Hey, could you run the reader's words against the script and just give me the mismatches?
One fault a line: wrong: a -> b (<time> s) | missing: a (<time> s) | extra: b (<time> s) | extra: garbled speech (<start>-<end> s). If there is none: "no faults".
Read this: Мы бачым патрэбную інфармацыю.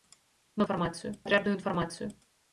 wrong: бачым -> інфармацыю (0.6 s)